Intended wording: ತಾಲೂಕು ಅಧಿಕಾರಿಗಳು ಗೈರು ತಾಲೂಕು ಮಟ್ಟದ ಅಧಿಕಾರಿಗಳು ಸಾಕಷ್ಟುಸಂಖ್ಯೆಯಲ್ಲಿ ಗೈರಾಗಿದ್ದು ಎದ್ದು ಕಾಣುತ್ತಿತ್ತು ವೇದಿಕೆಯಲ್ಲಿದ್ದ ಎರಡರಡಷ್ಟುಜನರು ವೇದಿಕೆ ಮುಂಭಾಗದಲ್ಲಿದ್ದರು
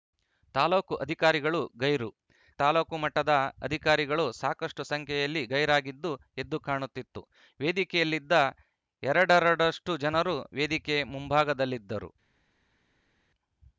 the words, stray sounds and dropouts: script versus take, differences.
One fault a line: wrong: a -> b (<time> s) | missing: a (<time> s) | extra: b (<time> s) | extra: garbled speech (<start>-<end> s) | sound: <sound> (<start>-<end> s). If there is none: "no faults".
no faults